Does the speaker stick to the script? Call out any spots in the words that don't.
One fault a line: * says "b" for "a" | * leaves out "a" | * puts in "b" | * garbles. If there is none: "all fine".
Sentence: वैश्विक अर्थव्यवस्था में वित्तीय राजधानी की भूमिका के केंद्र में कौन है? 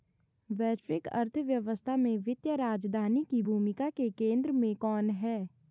all fine